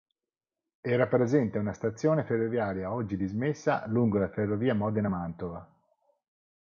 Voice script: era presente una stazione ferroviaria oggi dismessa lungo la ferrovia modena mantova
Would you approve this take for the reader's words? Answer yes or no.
yes